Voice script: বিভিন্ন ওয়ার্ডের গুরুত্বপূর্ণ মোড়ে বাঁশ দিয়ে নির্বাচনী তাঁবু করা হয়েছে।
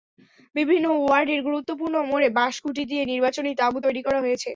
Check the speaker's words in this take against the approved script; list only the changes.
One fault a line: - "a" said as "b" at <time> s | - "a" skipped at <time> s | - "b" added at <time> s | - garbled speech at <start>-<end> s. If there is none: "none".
- "খুঁটি" added at 2.6 s
- "তৈরি" added at 3.8 s